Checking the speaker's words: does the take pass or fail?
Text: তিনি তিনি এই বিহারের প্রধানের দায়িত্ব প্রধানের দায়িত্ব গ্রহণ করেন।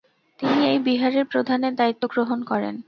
fail